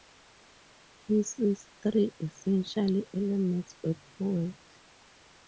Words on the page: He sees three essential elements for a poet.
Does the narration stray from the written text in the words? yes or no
yes